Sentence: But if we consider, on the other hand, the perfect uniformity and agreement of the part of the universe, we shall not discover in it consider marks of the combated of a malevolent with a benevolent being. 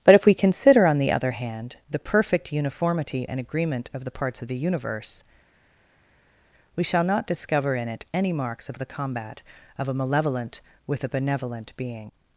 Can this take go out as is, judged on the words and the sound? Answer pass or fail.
fail